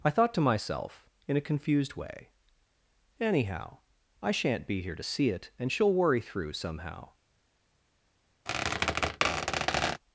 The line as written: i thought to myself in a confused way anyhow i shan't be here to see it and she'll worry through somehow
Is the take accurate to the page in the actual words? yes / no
yes